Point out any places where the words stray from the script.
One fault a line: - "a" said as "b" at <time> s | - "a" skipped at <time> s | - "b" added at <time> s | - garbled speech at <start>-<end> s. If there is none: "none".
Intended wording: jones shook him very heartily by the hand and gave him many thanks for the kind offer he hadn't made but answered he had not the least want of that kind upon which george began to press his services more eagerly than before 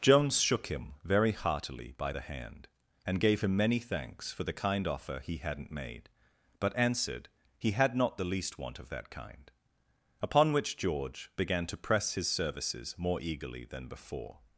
none